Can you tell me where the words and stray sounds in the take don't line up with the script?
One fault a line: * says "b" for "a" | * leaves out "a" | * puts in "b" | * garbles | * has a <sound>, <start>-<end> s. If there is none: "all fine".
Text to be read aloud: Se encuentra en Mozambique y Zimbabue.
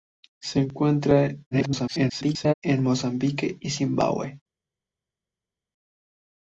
* garbles